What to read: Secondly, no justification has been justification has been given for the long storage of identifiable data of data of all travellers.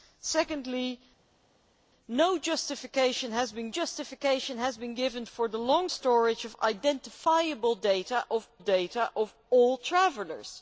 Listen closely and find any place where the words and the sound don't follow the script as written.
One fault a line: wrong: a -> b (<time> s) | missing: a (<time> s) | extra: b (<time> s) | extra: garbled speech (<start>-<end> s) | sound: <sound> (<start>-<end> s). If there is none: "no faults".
no faults